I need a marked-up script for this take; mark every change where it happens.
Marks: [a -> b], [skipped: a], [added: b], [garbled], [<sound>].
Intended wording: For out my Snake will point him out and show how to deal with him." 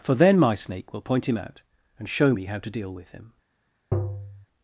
For [out -> then] my Snake will point him out and show [added: me] how to deal with him." [tap]